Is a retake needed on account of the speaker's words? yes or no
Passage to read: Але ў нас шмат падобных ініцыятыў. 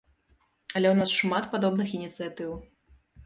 no